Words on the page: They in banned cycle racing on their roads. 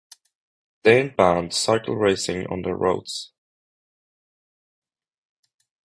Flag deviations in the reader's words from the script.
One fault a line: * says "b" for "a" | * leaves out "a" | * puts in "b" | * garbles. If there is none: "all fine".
all fine